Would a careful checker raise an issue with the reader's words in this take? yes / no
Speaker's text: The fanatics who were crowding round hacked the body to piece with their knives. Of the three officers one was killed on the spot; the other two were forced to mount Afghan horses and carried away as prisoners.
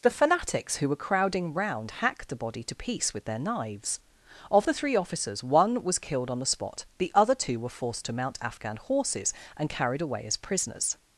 no